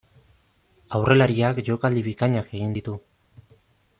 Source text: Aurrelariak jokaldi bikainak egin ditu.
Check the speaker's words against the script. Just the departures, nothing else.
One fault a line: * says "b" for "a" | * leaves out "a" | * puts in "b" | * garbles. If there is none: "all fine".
all fine